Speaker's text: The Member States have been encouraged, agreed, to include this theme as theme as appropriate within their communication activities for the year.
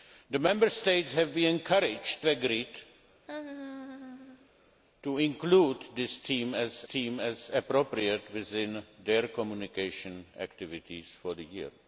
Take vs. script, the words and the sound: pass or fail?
fail